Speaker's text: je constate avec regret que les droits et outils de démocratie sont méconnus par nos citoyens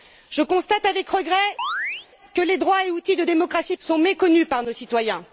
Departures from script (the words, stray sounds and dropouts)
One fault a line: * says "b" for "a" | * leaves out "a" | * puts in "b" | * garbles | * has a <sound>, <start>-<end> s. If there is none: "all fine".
* has a chirp, 1.6-2.1 s